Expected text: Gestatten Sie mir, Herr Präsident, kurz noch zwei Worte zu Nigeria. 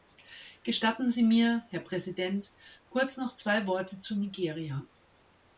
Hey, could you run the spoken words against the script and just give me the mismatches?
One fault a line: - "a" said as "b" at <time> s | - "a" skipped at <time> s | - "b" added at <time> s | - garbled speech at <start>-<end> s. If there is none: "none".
none